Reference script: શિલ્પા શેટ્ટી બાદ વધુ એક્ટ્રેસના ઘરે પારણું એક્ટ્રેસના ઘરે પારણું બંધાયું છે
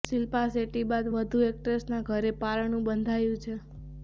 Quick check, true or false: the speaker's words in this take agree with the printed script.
false